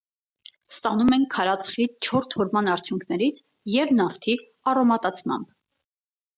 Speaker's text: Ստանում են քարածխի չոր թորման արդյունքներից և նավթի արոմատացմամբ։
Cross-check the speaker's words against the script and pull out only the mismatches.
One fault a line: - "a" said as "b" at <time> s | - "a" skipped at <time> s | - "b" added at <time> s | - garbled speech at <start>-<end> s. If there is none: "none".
none